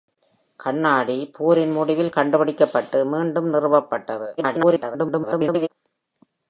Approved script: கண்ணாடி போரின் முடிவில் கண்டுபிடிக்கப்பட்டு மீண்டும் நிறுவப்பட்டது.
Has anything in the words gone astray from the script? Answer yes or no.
yes